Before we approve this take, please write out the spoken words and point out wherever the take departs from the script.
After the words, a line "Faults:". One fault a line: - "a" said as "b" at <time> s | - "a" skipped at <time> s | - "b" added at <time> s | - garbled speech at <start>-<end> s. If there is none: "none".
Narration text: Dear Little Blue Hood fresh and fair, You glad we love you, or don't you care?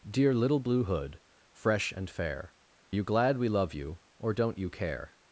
Dear Little Blue Hood fresh and fair, You glad we love you, or don't you care?
Faults:
none